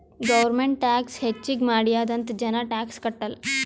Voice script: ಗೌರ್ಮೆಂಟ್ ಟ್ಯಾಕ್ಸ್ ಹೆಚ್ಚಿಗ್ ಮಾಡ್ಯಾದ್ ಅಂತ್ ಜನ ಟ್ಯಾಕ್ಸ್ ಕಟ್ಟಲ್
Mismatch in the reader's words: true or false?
false